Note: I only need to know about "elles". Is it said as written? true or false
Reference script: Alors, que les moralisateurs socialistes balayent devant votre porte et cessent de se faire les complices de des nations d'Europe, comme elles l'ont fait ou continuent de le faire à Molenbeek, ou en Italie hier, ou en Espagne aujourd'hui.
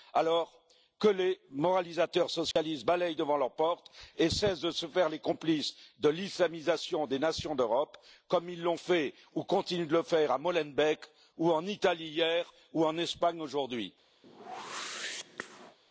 false